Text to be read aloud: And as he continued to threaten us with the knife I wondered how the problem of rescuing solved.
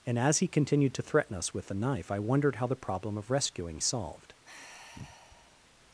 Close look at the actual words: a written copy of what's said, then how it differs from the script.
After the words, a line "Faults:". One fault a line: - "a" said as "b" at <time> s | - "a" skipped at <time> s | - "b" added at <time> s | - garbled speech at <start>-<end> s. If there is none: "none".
And as he continued to threaten us with the knife I wondered how the problem of rescuing solved.
Faults:
none